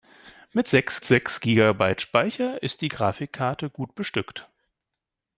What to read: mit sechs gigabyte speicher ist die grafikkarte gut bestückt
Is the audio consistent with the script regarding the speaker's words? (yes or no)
no